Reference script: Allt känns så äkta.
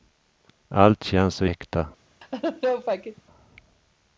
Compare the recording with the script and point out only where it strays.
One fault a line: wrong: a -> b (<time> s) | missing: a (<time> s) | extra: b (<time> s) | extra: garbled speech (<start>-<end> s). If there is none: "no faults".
no faults